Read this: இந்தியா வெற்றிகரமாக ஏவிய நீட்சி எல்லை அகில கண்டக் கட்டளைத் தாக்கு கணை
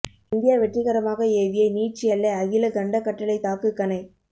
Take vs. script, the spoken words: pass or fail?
pass